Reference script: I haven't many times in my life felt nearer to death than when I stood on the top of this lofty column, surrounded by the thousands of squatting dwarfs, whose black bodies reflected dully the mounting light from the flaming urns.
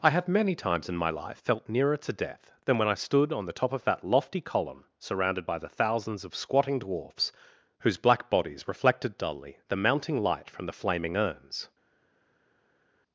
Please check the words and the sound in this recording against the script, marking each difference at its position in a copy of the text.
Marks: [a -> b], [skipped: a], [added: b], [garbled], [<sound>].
I [haven't -> have] many times in my life felt nearer to death than when I stood on the top of [this -> that] lofty column, surrounded by the thousands of squatting dwarfs, whose black bodies reflected dully the mounting light from the flaming urns.